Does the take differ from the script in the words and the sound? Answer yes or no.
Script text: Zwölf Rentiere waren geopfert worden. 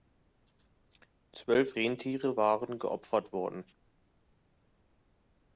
no